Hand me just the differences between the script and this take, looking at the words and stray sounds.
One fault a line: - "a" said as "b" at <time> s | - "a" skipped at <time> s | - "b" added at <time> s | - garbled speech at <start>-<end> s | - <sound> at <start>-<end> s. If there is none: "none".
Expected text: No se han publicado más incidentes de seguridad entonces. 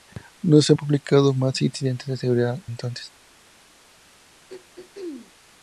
- throat clearing at 4.5-5.3 s